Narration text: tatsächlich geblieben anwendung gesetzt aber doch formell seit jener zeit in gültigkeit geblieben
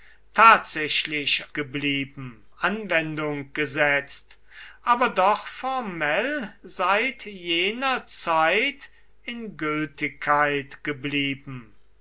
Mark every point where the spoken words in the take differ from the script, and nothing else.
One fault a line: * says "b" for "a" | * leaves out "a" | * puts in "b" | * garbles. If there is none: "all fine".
all fine